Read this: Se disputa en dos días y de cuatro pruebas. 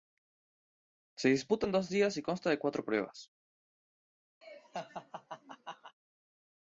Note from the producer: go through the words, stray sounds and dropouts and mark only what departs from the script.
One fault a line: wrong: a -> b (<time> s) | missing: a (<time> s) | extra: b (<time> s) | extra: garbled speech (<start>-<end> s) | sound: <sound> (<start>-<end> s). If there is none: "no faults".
extra: consta (2.2 s)
sound: laugh (4.4-6.0 s)